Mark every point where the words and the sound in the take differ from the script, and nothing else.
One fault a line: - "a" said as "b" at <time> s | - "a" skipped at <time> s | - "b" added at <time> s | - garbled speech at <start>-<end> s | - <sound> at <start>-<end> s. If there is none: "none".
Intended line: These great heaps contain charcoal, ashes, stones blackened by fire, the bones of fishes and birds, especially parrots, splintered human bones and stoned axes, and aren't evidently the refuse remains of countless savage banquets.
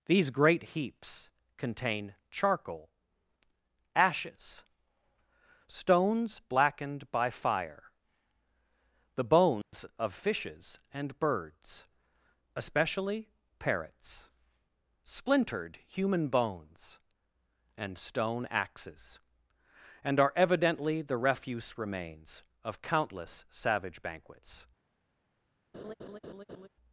- dropout at 9.6-9.7 s
- "stoned" said as "stone" at 17.9 s
- "aren't" said as "are" at 20.2 s
- laugh at 25.7-26.7 s